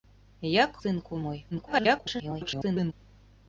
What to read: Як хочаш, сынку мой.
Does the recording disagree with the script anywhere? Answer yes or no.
yes